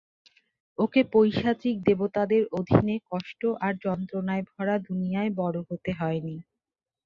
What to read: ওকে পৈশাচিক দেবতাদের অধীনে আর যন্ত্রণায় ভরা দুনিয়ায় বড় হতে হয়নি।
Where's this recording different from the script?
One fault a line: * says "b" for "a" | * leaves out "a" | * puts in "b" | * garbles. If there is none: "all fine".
* puts in "কষ্ট"